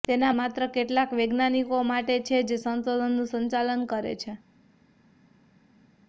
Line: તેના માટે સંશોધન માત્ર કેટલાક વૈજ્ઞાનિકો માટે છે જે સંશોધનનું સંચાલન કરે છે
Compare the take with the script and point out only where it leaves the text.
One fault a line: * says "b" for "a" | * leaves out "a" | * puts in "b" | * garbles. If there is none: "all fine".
* leaves out "માટે સંશોધન"